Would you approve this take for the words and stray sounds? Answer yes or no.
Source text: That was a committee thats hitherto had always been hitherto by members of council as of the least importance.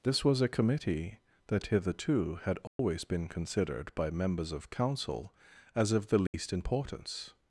no